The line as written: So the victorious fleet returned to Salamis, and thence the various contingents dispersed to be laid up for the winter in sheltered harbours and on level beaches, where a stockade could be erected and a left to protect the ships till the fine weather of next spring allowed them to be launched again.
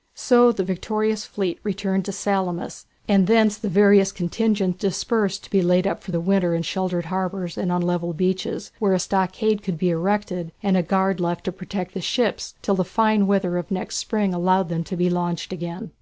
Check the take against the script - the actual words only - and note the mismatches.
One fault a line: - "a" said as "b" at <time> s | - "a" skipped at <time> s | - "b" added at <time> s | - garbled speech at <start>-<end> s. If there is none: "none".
- "guard" added at 10.8 s